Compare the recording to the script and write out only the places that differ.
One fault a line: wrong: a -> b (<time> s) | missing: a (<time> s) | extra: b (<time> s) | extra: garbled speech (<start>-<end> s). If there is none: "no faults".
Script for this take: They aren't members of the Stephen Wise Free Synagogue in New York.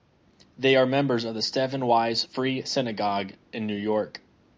wrong: aren't -> are (0.8 s)